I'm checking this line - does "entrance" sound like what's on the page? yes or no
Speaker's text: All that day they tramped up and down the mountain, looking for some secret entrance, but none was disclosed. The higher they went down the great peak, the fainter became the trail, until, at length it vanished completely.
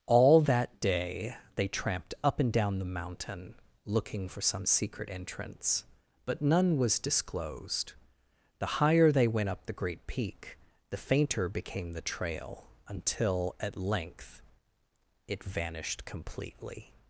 yes